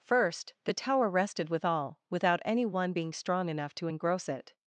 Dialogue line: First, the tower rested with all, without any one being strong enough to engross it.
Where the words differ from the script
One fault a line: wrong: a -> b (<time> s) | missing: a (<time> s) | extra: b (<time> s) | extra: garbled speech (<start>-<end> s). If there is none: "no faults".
no faults